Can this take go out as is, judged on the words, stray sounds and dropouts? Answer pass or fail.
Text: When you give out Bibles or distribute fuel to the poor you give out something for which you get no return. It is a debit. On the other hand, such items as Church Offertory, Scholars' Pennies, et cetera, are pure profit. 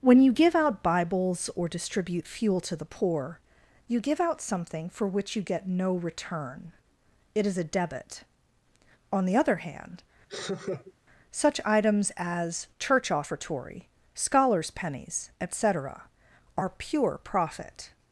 fail